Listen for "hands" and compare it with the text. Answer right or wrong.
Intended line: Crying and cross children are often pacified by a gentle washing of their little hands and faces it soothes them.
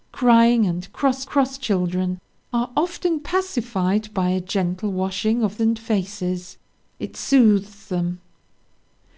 wrong